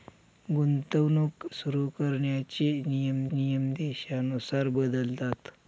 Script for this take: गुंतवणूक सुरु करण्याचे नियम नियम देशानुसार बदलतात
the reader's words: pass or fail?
pass